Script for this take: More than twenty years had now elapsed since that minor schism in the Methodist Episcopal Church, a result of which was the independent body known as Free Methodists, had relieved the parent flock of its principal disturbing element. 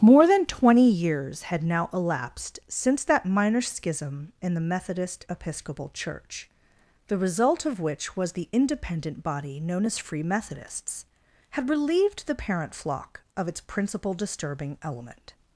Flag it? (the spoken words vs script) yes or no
yes